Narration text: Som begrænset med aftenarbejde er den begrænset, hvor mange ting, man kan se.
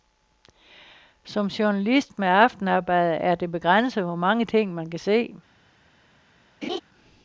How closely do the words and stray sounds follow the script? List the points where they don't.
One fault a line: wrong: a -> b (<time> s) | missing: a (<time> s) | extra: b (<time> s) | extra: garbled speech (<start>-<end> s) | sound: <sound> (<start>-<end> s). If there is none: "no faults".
wrong: begrænset -> journalist (1.5 s)
wrong: den -> det (3.4 s)
sound: laugh (6.6-6.8 s)